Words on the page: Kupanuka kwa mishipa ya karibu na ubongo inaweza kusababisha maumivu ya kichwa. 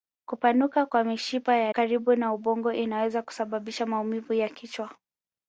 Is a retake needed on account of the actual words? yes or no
no